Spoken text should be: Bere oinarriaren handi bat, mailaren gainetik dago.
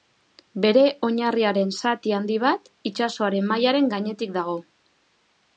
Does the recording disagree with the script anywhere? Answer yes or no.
yes